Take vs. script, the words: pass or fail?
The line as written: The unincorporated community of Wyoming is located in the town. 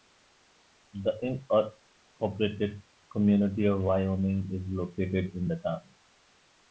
pass